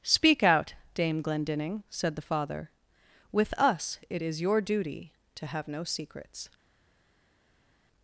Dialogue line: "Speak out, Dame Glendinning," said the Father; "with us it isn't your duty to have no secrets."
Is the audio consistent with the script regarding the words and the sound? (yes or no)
no